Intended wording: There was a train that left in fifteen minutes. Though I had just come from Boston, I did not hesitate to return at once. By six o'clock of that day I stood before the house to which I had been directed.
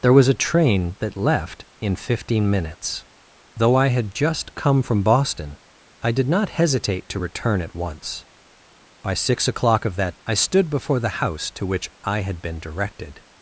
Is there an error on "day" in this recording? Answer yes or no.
yes